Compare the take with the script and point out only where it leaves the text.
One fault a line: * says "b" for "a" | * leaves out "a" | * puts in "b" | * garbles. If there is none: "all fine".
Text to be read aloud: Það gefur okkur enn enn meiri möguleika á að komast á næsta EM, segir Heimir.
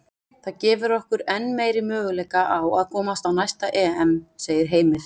* leaves out "enn"